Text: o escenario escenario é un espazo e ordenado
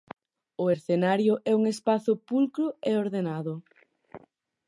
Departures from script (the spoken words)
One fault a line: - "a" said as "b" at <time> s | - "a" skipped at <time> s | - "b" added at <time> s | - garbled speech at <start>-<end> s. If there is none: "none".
- "escenario" skipped at 1.3 s
- "pulcro" added at 2.3 s